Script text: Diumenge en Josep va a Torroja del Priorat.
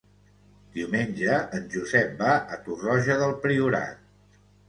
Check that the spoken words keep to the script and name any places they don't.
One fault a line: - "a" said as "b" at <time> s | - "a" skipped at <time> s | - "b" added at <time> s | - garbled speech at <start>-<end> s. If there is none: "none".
none